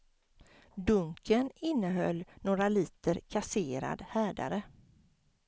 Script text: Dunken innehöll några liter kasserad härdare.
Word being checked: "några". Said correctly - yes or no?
yes